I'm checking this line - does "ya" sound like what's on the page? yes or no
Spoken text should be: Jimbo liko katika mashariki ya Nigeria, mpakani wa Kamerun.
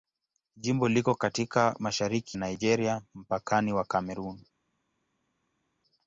no